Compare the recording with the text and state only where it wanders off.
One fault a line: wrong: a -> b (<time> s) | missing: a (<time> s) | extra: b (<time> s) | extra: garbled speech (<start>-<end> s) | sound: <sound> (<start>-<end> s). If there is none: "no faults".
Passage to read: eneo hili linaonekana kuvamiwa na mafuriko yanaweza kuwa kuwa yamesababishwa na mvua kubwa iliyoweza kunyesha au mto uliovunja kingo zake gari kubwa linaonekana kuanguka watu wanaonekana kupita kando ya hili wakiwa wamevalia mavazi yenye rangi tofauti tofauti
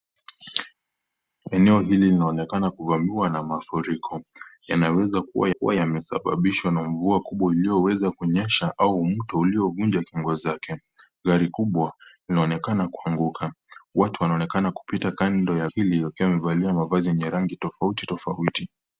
no faults